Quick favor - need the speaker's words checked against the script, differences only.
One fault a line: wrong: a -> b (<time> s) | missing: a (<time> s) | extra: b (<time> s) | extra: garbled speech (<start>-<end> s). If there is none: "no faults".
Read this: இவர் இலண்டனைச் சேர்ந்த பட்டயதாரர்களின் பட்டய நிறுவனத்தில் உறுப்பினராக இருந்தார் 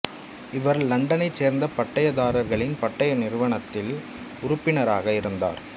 no faults